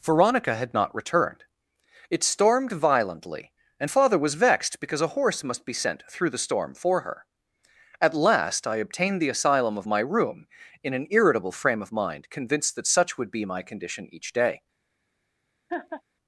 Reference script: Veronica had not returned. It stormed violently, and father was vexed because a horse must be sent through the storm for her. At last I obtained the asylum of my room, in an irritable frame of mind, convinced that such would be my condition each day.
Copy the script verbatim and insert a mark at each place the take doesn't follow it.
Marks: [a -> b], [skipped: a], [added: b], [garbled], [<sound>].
Veronica had not returned. It stormed violently, and father was vexed because a horse must be sent through the storm for her. At last I obtained the asylum of my room, in an irritable frame of mind, convinced that such would be my condition each day. [laugh]